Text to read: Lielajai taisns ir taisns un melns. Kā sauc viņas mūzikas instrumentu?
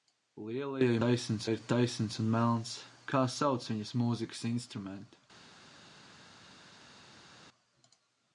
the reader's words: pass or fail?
pass